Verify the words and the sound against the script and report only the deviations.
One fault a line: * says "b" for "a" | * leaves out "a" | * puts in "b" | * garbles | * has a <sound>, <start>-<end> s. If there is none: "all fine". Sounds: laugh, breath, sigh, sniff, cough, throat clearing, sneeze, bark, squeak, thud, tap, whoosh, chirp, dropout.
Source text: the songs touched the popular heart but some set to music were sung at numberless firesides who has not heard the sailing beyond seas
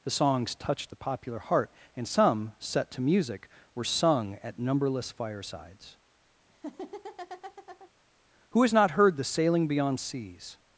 * says "and" for "but"
* has a laugh, 6.5-7.9 s